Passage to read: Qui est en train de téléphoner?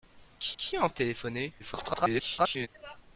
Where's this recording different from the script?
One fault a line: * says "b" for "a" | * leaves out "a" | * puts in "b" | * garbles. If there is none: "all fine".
* puts in "qui"
* leaves out "train"
* garbles